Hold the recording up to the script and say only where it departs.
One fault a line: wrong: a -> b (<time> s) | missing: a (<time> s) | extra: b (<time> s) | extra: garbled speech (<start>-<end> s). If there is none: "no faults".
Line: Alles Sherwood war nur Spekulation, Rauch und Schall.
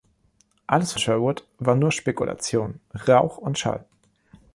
no faults